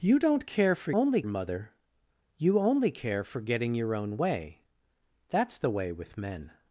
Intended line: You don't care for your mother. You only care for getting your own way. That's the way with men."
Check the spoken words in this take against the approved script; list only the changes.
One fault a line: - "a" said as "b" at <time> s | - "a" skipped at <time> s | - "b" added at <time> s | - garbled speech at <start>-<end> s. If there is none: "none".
- "your" said as "only" at 0.9 s